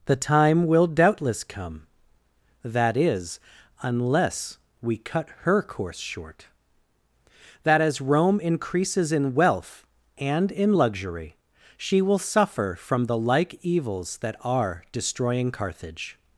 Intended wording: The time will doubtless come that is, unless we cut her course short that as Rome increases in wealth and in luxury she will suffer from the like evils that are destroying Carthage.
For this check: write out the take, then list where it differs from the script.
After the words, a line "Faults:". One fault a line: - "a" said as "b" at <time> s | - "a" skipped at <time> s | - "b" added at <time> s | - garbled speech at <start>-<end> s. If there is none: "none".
The time will doubtless come that is, unless we cut her course short that as Rome increases in wealth and in luxury she will suffer from the like evils that are destroying Carthage.
Faults:
none